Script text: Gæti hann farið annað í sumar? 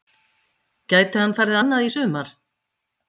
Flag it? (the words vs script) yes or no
no